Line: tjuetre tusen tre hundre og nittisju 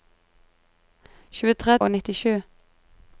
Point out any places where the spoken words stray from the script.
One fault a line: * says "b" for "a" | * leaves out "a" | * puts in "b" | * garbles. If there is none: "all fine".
* leaves out "tusen tre hundre"